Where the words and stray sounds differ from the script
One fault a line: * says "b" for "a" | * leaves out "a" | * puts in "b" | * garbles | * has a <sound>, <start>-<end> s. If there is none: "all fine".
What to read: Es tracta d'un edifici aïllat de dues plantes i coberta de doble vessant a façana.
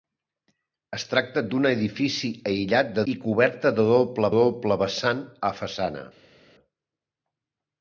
* leaves out "dues plantes"
* puts in "doble"